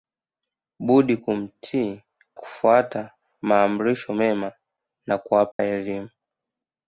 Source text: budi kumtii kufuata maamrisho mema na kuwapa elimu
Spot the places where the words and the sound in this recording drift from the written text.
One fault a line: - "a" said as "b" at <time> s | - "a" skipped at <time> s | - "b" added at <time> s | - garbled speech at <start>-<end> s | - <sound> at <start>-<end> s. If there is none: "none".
- dropout at 5.5-5.6 s